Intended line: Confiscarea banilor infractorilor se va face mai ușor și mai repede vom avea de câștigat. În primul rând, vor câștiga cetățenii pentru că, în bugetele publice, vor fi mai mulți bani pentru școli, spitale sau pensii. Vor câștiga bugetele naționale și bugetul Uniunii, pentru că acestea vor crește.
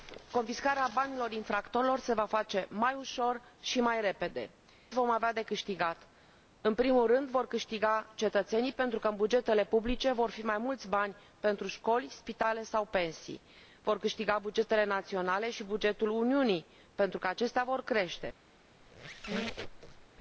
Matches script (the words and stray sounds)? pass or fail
fail